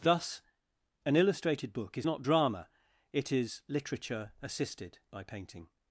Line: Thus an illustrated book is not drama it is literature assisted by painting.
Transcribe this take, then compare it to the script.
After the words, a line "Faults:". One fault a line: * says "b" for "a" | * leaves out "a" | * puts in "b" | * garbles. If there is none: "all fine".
Thus an illustrated book is not drama it is literature assisted by painting.
Faults:
all fine